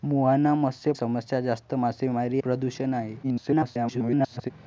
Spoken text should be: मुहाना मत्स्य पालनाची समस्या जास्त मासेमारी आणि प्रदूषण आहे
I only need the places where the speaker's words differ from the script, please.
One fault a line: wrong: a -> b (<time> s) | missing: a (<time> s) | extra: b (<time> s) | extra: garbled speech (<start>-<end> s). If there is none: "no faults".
missing: पालनाची (0.9 s)
missing: आणि (2.4 s)
extra: garbled speech (3.2-4.5 s)